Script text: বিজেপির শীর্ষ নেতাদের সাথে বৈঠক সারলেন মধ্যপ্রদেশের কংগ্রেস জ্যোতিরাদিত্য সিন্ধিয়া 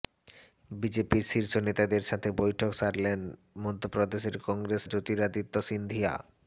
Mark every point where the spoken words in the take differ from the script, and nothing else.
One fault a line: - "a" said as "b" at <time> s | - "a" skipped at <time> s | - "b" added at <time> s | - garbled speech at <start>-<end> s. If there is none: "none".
none